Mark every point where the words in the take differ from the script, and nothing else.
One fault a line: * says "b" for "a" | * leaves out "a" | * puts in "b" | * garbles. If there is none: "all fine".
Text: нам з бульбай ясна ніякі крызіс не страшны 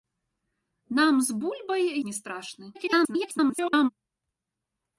* leaves out "ясна ніякі крызіс"
* garbles